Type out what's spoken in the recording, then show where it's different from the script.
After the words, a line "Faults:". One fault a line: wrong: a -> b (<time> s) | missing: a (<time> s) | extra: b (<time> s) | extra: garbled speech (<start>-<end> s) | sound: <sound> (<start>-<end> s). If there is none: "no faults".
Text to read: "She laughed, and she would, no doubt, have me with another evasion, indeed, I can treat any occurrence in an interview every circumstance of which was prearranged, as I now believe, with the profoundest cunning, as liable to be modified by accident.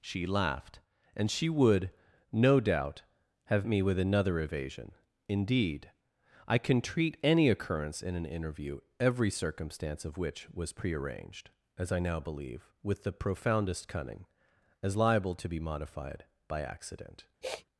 "She laughed, and she would, no doubt, have me with another evasion, indeed, I can treat any occurrence in an interview every circumstance of which was prearranged, as I now believe, with the profoundest cunning, as liable to be modified by accident.
Faults:
sound: sniff (17.4-17.7 s)